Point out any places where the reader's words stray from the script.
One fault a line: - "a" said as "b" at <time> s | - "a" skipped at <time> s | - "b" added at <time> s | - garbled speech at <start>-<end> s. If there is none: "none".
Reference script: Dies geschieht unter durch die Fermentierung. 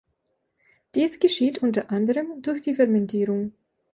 - "anderem" added at 1.9 s